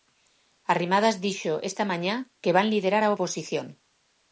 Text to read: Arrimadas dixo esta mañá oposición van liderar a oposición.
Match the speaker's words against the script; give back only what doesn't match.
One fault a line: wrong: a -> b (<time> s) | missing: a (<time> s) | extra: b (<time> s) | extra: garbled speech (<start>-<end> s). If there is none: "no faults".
wrong: oposición -> que (2.4 s)